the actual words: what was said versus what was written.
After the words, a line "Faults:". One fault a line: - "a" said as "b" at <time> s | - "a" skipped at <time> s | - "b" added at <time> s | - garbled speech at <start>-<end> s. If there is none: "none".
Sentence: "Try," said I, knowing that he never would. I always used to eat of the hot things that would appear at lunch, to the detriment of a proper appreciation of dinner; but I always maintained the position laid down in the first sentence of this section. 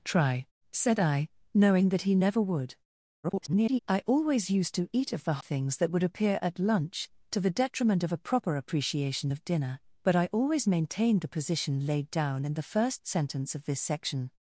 "Try," said I, knowing that he never would. [garbled] I always used to eat of the things that would appear at lunch, to the detriment of a proper appreciation of dinner; but I always maintained the position laid down in the first sentence of this section.
Faults:
- garbled speech at 3.2-3.8 s
- "hot" skipped at 5.4 s